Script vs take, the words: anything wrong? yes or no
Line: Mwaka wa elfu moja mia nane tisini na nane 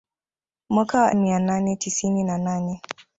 yes